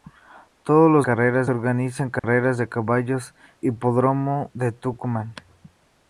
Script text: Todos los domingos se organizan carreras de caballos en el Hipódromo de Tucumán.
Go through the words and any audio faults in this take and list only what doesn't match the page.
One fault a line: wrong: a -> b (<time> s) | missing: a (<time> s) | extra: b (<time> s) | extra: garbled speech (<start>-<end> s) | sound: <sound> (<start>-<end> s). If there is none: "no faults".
wrong: domingos -> carreras (1.0 s)
sound: dropout (2.2-2.2 s)
missing: en el (3.3 s)